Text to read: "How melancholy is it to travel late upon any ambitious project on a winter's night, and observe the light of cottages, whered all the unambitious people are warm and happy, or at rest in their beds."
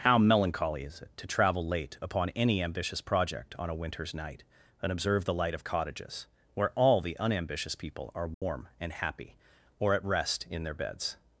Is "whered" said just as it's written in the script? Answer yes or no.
no